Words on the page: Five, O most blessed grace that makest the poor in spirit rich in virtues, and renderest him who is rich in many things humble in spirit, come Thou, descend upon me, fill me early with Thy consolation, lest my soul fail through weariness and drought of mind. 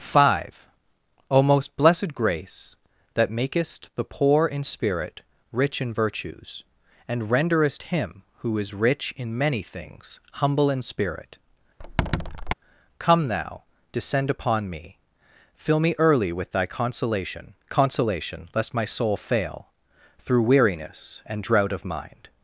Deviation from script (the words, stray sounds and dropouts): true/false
true